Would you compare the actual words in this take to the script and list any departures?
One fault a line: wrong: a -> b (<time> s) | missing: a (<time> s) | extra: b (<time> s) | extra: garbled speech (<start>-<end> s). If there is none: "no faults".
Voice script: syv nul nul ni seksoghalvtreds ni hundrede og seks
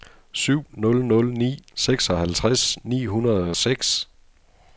no faults